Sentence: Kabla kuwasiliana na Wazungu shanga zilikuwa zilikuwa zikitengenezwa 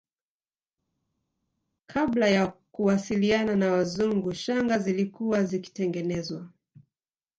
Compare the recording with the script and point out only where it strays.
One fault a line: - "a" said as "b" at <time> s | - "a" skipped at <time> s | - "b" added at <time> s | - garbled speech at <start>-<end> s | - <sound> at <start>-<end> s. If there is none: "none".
- "ya" added at 2.3 s
- "zilikuwa" skipped at 5.4 s